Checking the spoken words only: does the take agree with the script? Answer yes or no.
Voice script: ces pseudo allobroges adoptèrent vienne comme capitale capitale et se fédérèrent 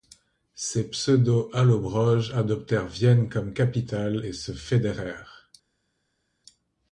no